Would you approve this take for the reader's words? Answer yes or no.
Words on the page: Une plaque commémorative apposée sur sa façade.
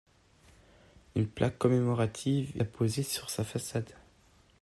yes